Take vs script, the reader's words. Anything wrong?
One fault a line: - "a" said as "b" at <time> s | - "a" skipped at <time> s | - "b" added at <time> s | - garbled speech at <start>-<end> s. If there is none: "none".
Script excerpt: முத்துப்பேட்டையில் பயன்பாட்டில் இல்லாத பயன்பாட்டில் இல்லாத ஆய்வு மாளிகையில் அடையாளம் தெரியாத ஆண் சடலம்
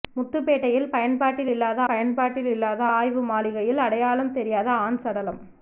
none